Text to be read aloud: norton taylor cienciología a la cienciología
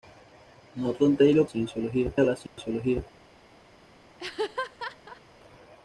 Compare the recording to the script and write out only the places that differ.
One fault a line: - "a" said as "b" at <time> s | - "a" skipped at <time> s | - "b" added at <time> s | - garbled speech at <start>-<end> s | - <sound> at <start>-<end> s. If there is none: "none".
- dropout at 2.5-2.6 s
- laugh at 4.2-5.2 s